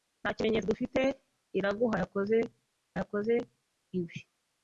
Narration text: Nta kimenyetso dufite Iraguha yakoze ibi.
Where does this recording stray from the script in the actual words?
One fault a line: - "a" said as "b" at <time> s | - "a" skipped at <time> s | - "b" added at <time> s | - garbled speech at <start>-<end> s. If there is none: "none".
- "yakoze" added at 3.0 s